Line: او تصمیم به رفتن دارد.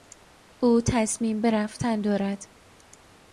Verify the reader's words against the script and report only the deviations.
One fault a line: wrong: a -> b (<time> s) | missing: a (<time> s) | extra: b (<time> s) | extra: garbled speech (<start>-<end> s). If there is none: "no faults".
no faults